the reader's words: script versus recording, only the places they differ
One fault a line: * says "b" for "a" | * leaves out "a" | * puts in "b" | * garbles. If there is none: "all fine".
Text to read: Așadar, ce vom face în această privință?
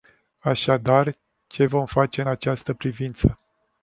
all fine